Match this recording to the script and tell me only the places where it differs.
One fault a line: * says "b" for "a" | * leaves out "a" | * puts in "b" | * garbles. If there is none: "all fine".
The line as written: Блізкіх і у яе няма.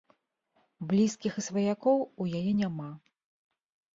* puts in "сваякоў"